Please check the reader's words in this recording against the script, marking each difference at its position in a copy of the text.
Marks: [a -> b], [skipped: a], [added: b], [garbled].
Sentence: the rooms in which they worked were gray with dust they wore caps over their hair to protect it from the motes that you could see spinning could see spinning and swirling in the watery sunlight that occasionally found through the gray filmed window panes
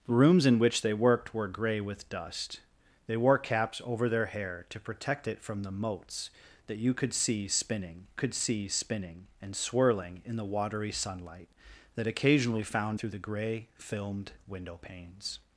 the rooms in which they worked were gray with dust they wore caps over their hair to protect it from the motes that you could see spinning could see spinning and swirling in the watery sunlight that occasionally found through the gray filmed window panes